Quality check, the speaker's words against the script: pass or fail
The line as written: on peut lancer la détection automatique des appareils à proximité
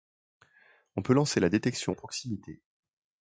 fail